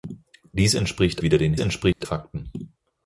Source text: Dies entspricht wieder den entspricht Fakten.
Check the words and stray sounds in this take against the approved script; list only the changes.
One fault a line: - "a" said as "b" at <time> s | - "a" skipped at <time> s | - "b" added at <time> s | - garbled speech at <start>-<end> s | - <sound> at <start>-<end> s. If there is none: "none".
- dropout at 1.9-2.0 s